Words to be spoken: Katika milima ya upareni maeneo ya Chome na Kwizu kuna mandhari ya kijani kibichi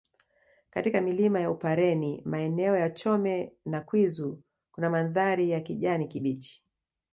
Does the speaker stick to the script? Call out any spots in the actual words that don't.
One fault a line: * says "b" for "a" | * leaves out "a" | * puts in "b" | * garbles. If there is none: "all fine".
all fine